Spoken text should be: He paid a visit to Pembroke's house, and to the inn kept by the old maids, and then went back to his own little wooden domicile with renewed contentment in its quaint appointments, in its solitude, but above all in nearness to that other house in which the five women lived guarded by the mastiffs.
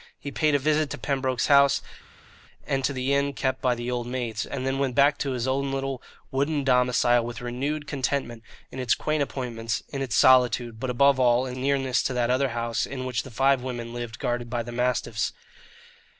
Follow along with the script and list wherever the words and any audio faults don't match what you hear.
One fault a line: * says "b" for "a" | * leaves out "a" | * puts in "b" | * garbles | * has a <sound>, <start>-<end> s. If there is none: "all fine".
all fine